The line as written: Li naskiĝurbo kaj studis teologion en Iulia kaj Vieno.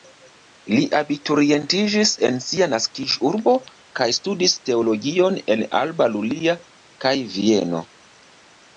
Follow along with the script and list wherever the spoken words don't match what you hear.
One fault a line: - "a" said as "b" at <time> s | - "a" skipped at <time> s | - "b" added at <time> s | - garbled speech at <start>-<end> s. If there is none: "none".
- "abiturientiĝis en sia" added at 1.0 s
- "Alba" added at 5.8 s